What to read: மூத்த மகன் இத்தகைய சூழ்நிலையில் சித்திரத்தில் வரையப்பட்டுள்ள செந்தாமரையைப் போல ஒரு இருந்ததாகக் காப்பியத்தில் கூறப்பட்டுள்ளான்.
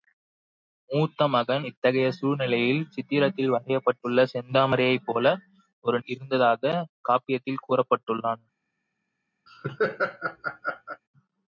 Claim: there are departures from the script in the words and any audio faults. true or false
true